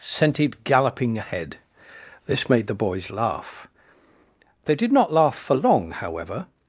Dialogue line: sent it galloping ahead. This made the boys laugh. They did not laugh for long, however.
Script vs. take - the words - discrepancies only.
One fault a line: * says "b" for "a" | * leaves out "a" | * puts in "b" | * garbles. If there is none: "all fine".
all fine